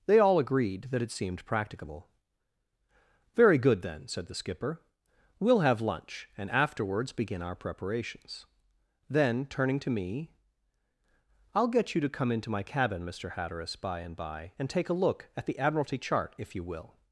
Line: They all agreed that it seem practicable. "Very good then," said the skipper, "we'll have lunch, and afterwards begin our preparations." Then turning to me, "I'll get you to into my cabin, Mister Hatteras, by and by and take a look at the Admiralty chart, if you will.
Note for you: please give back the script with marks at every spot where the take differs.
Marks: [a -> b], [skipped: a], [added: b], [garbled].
They all agreed that it [seem -> seemed] practicable. "Very good then," said the skipper, "we'll have lunch, and afterwards begin our preparations." Then turning to me, "I'll get you to [added: come] into my cabin, Mister Hatteras, by and by and take a look at the Admiralty chart, if you will.